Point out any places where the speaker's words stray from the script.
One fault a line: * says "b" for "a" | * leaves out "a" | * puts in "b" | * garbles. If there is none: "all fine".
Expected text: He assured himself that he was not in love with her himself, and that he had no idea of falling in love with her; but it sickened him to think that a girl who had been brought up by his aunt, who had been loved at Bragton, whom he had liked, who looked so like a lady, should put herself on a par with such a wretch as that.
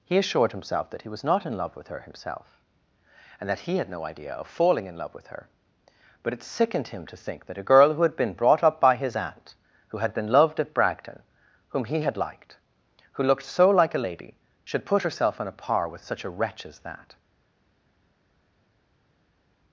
all fine